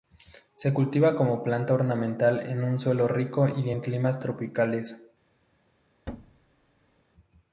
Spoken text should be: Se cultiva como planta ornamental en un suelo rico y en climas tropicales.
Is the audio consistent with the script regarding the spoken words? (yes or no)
yes